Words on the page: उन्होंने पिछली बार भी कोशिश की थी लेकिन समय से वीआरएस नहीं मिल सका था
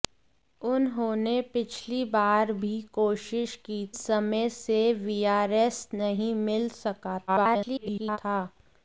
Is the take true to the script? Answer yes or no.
no